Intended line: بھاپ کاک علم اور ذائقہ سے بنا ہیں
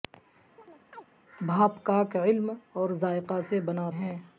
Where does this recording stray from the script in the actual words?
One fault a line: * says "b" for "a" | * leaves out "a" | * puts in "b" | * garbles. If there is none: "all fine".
all fine